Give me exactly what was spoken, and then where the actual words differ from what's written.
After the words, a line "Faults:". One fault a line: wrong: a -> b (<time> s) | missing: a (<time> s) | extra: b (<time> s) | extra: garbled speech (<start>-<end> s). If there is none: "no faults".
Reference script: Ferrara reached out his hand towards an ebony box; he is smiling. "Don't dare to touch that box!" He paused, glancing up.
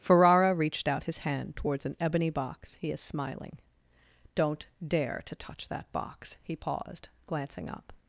Ferrara reached out his hand towards an ebony box; he is smiling. "Don't dare to touch that box!" He paused, glancing up.
Faults:
no faults